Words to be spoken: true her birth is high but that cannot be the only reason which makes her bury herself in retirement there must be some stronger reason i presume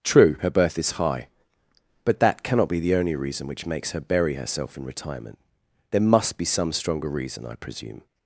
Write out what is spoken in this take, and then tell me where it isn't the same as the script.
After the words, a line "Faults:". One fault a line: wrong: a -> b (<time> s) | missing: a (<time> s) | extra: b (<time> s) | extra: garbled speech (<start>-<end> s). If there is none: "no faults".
true her birth is high but that cannot be the only reason which makes her bury herself in retirement there must be some stronger reason i presume
Faults:
no faults